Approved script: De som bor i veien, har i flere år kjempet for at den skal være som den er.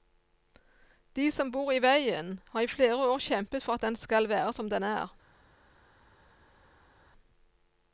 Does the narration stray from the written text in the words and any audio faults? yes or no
no